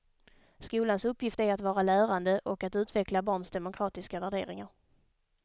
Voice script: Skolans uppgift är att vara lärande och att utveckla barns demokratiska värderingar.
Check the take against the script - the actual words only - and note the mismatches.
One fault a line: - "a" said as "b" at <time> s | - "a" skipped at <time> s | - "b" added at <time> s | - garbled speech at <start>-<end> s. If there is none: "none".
none